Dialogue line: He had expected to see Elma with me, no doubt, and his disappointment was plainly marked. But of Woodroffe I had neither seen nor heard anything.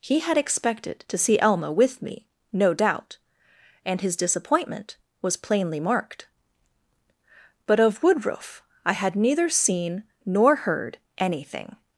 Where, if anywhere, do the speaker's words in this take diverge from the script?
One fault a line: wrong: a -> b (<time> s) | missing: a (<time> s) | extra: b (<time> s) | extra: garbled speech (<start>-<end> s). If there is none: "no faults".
no faults